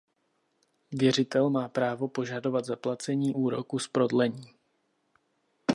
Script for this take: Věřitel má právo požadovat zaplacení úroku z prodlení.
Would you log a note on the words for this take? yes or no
no